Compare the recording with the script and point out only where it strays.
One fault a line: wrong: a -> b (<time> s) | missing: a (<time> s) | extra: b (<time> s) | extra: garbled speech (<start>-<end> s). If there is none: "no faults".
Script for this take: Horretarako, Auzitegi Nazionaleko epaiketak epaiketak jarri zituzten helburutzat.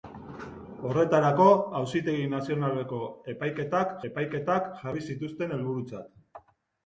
no faults